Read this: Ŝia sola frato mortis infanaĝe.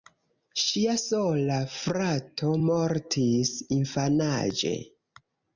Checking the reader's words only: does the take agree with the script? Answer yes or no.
yes